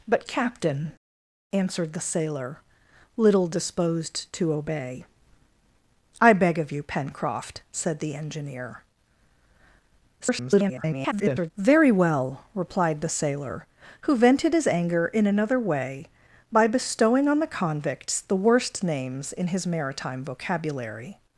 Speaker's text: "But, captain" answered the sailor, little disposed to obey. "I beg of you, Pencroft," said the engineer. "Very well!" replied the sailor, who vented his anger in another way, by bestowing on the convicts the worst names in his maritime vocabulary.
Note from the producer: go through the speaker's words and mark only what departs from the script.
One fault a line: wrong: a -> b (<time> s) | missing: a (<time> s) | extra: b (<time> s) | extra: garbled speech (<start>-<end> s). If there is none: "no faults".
extra: garbled speech (10.2-11.5 s)